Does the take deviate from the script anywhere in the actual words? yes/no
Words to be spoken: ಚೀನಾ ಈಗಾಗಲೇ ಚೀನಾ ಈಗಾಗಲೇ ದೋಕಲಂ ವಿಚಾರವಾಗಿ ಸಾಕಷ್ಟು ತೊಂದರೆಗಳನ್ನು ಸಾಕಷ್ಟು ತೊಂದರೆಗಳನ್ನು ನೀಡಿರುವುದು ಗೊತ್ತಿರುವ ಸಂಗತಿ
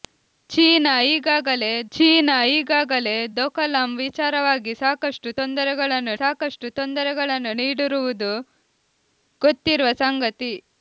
no